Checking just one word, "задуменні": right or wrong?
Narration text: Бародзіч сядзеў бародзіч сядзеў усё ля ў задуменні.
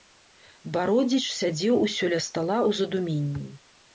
right